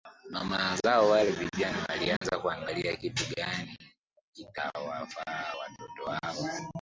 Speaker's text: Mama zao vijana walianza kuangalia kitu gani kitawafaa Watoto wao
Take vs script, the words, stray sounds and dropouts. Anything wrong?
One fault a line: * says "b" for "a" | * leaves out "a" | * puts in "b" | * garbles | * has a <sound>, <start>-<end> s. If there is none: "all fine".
* puts in "wale"
* has a dropout, 2.2-2.2 s